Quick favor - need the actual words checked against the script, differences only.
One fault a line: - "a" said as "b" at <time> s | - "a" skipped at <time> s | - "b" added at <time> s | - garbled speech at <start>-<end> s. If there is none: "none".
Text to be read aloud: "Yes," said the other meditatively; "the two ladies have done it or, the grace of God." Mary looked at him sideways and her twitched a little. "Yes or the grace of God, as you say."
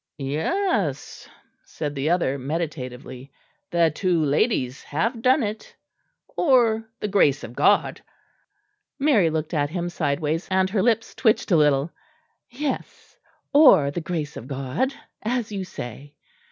- "lips" added at 10.8 s